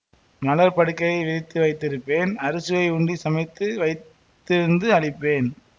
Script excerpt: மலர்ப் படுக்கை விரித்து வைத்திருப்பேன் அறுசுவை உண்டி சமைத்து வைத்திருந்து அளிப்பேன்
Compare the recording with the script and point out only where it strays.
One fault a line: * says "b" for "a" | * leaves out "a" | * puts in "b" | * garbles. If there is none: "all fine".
all fine